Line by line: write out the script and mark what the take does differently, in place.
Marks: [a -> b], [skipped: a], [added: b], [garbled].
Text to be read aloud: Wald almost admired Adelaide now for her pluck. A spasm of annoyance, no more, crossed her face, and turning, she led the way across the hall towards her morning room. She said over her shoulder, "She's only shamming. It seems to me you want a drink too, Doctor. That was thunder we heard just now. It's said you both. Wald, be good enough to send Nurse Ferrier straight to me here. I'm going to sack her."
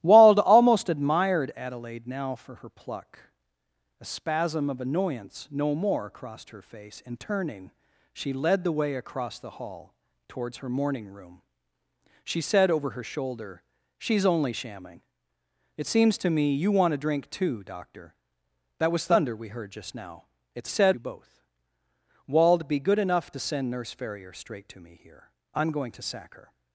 Wald almost admired Adelaide now for her pluck. A spasm of annoyance, no more, crossed her face, and turning, she led the way across the hall towards her morning room. She said over her shoulder, "She's only shamming. It seems to me you want a drink too, Doctor. That was thunder we heard just now. It's said you both. Wald, be good enough to send Nurse Ferrier straight to me here. I'm going to sack her."